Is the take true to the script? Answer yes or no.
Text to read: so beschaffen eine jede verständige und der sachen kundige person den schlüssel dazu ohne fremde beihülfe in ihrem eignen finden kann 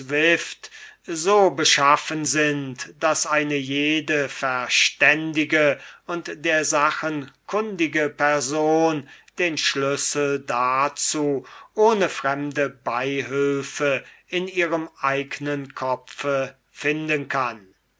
no